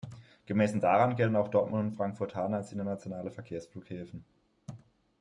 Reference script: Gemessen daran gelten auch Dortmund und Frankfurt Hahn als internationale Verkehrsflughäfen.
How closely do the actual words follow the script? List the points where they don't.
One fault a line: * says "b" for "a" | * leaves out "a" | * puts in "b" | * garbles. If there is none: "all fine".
all fine